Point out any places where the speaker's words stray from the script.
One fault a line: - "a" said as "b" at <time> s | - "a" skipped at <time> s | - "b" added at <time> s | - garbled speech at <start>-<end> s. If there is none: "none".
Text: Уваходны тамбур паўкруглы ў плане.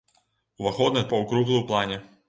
- "тамбур" skipped at 1.0 s